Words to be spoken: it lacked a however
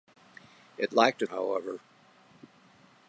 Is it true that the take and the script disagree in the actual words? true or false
false